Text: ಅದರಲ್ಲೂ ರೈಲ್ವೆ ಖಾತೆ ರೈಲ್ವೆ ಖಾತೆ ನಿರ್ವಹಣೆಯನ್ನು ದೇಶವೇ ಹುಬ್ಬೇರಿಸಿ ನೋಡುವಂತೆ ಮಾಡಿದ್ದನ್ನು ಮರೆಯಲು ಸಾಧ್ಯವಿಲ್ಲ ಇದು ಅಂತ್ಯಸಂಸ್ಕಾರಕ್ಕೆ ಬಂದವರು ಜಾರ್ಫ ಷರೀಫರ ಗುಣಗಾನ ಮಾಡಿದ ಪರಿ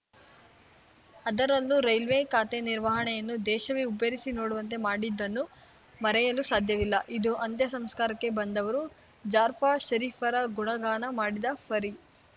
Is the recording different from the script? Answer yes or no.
yes